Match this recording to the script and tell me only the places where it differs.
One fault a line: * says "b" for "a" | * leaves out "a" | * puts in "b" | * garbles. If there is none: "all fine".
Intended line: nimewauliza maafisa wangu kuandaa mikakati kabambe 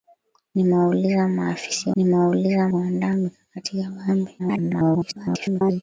* says "nimewauliza" for "wangu"
* garbles